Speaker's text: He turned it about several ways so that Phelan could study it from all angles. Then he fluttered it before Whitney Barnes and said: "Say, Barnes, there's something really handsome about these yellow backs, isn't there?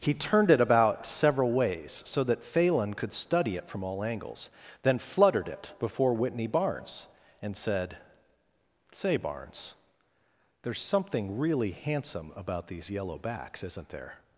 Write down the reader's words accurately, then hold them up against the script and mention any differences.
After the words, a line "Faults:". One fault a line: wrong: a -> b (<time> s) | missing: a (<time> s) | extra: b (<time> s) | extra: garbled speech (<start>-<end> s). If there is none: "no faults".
He turned it about several ways so that Phelan could study it from all angles. Then fluttered it before Whitney Barnes and said: "Say, Barnes, there's something really handsome about these yellow backs, isn't there?
Faults:
missing: he (5.0 s)